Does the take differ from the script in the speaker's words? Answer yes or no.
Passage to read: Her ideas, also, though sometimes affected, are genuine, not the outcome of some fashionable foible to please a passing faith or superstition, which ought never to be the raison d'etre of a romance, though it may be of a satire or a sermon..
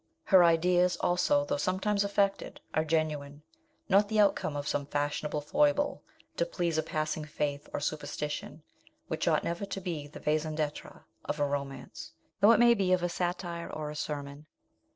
no